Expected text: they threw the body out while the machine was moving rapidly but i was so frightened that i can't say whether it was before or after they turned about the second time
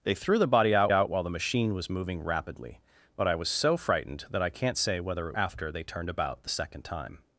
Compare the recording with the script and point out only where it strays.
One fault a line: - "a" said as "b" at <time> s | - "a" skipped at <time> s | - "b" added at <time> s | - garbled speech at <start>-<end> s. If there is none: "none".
- "out" added at 0.9 s
- "was before or" skipped at 5.3 s